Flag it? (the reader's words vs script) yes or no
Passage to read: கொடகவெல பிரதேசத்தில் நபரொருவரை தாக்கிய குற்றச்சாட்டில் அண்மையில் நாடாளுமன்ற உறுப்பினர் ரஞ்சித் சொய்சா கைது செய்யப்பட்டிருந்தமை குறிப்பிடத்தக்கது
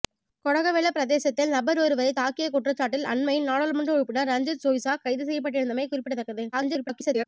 yes